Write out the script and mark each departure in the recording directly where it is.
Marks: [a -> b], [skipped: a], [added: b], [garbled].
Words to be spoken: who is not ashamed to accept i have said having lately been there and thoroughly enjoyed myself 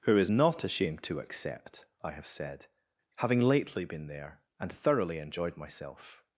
who is not ashamed to accept i have said having lately been there and thoroughly enjoyed myself